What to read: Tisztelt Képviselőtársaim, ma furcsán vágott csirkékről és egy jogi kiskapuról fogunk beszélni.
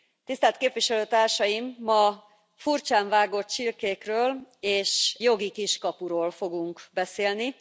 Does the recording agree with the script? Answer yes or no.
no